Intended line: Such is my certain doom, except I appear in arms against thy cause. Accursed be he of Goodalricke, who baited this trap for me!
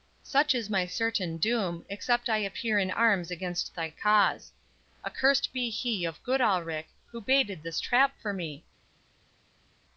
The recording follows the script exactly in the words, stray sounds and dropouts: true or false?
true